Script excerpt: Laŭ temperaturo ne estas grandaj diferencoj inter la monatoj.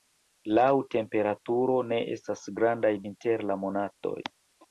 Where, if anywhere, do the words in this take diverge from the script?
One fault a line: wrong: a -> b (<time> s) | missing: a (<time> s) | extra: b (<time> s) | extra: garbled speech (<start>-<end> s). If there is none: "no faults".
missing: diferencoj (2.9 s)